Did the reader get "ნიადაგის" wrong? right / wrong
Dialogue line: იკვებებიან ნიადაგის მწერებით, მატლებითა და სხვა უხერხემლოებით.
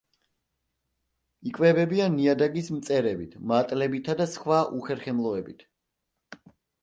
right